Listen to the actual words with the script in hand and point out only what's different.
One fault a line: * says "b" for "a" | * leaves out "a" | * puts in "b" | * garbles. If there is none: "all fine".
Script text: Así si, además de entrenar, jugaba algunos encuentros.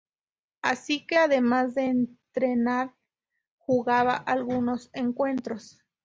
* says "que" for "si"